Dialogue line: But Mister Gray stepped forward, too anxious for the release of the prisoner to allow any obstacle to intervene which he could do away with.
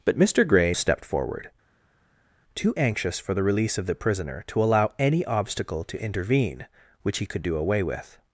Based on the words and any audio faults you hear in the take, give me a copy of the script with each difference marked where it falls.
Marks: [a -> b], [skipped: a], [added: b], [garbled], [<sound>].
But Mister Gray stepped forward, too anxious for the release of the prisoner to allow any obstacle to intervene which he could do away with.